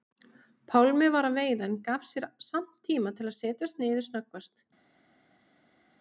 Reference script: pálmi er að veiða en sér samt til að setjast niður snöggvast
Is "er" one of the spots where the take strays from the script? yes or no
yes